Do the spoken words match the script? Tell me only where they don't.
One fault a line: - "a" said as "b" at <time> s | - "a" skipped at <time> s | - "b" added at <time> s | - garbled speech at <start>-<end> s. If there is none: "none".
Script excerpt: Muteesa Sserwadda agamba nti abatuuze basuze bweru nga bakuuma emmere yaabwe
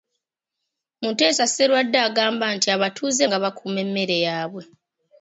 - "basuze bweru" skipped at 3.2 s